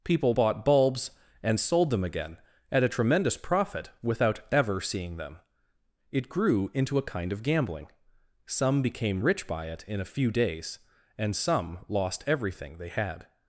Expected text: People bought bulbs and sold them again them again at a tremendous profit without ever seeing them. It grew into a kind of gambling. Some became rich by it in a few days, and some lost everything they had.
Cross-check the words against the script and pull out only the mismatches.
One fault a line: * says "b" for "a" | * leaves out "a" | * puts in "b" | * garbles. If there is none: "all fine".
* leaves out "them again"